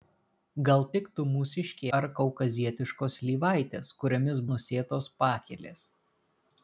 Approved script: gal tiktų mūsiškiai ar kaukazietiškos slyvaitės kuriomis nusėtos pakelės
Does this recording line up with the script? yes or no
yes